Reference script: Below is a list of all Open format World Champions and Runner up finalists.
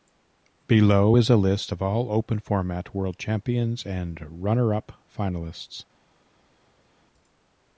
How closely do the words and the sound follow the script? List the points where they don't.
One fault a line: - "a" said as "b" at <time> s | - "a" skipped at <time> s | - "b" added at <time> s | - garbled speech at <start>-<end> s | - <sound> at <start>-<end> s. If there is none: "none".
none